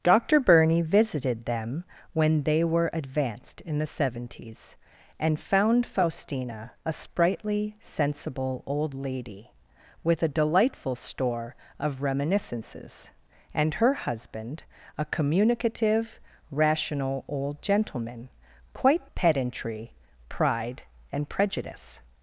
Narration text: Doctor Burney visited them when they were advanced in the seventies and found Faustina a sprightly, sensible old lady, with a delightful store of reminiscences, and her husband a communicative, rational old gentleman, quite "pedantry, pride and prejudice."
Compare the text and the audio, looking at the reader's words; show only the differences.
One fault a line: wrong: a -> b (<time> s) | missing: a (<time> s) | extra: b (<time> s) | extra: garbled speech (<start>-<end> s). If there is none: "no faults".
no faults